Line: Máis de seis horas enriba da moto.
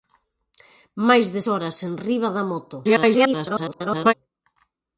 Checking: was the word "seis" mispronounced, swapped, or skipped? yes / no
yes